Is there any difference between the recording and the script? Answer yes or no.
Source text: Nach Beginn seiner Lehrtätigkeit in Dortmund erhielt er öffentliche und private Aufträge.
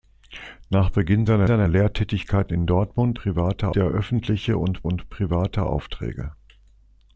yes